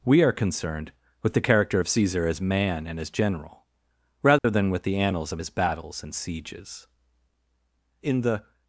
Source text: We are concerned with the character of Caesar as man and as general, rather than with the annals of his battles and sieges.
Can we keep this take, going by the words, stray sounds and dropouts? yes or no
no